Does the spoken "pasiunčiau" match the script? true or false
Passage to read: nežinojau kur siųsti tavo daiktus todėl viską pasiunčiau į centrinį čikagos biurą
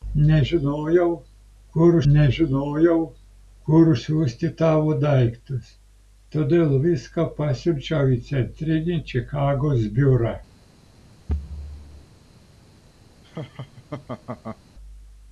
true